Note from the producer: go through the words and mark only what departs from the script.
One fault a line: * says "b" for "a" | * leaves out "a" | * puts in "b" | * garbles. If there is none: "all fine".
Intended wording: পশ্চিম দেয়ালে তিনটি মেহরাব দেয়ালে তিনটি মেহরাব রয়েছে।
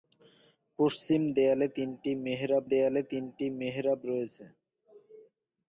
all fine